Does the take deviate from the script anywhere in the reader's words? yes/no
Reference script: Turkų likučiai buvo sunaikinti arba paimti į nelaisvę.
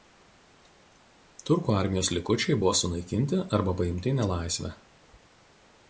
yes